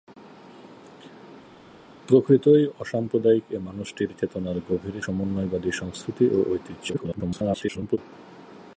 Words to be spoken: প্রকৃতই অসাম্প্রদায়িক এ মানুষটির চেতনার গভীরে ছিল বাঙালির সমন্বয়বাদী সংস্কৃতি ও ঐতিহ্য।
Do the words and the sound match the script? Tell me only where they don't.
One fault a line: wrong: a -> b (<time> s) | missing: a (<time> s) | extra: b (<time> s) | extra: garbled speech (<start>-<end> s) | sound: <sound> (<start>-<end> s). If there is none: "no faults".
missing: ছিল বাঙালির (5.0 s)
extra: garbled speech (6.9-8.0 s)